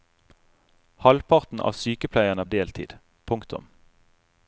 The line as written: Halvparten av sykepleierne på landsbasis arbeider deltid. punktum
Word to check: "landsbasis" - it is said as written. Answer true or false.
false